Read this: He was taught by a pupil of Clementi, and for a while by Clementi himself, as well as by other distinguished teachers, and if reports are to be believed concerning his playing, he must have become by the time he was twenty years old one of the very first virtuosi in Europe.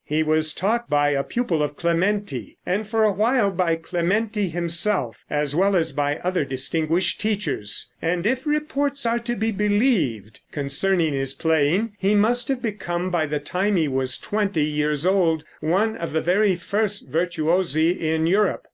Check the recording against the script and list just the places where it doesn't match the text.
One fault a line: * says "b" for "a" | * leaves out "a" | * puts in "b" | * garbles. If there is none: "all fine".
all fine